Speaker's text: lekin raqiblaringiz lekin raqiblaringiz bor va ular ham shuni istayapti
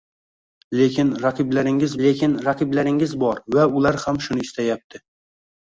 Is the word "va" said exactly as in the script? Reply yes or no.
yes